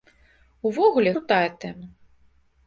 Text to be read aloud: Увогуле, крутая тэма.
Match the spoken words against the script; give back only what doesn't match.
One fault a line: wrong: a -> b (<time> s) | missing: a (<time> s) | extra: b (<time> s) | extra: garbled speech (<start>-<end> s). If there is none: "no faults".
no faults